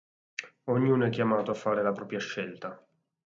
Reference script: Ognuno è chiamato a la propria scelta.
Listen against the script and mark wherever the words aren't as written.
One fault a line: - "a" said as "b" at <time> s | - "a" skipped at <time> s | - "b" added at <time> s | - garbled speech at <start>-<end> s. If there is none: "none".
- "fare" added at 1.5 s